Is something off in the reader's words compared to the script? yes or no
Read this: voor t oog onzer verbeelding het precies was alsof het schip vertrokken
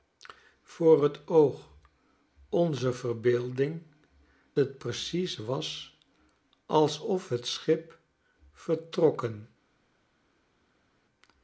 no